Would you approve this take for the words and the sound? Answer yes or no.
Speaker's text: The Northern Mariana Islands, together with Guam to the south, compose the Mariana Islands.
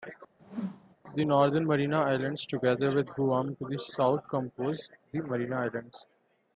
no